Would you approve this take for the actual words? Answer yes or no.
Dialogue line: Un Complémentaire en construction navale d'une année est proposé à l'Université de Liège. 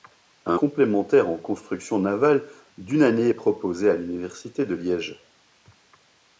yes